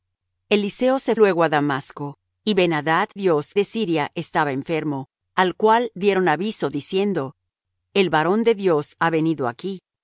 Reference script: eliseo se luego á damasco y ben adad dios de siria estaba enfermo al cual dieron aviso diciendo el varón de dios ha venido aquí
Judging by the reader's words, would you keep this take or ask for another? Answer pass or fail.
pass